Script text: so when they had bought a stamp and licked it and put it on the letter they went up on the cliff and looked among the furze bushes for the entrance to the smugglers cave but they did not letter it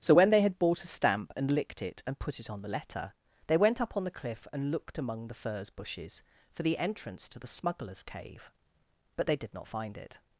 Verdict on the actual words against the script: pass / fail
fail